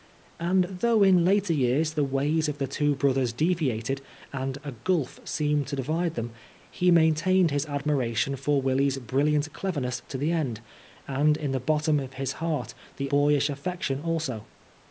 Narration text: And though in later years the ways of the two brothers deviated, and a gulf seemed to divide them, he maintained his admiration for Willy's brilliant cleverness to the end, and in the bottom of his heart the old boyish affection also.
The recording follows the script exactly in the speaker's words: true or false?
false